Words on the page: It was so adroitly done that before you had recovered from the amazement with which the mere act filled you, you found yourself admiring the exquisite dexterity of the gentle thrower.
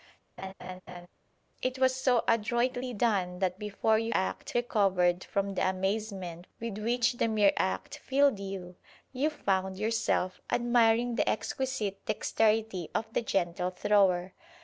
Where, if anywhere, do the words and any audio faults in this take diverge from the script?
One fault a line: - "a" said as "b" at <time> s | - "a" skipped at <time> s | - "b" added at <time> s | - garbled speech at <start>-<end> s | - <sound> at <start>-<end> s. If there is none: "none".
- laugh at 0.4-1.1 s
- "had" said as "act" at 4.1 s